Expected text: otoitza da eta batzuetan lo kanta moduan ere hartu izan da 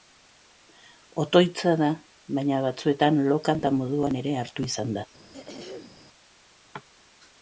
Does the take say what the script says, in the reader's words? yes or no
no